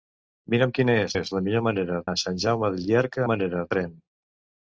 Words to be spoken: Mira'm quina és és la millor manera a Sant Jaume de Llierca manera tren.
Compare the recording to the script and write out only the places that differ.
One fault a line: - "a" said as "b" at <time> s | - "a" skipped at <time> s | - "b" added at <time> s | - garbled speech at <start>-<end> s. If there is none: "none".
none